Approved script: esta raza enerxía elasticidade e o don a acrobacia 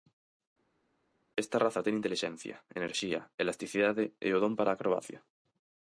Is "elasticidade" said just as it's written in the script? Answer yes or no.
yes